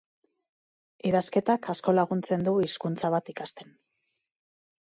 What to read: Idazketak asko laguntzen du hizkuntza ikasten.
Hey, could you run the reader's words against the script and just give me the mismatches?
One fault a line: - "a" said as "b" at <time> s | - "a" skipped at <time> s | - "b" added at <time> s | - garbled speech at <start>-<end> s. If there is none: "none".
- "bat" added at 3.2 s